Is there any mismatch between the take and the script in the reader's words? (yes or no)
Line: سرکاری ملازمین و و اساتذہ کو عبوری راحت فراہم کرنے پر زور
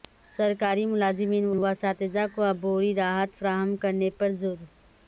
no